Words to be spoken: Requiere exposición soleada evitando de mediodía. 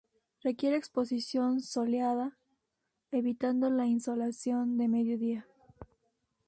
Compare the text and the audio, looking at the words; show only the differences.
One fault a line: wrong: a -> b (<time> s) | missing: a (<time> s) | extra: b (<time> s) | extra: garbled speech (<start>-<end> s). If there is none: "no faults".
extra: la insolación (3.7 s)